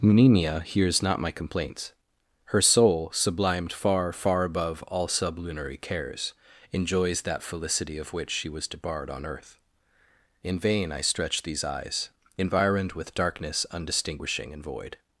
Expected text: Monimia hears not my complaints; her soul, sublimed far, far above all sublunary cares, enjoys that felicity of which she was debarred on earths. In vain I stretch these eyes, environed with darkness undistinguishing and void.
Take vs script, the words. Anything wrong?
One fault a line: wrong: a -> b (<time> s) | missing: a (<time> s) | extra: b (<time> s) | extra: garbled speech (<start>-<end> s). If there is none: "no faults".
wrong: earths -> earth (9.3 s)